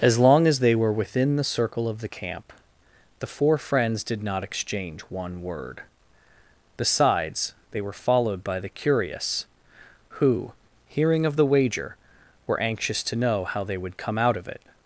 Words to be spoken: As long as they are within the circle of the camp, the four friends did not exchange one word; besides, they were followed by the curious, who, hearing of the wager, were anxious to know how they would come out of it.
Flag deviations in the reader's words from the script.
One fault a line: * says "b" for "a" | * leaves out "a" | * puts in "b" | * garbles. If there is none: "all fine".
* says "were" for "are"